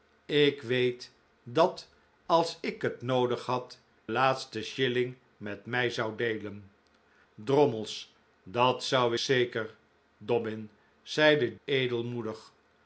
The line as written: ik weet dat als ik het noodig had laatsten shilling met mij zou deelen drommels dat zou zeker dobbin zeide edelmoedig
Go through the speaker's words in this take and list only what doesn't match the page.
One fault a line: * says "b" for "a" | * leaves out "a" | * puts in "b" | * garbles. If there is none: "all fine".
all fine